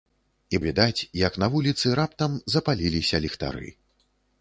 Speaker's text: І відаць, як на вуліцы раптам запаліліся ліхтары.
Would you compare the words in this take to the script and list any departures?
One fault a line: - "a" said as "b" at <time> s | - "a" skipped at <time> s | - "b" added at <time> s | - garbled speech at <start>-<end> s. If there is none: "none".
none